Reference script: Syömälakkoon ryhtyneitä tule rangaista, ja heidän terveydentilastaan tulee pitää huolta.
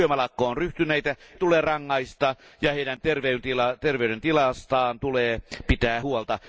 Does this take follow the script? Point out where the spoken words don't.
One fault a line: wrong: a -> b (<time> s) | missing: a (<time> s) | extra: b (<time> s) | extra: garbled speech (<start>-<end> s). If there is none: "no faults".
no faults